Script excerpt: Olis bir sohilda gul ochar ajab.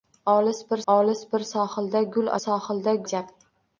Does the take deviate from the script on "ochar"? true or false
true